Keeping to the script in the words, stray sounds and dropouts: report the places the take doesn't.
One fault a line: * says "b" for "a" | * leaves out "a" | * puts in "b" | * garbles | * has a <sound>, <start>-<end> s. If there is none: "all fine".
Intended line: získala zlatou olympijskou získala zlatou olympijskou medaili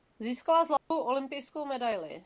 * has a dropout, 0.8-0.9 s
* leaves out "získala zlatou olympijskou"